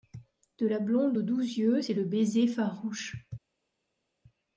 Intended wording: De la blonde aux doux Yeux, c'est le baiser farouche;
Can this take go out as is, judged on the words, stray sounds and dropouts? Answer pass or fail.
pass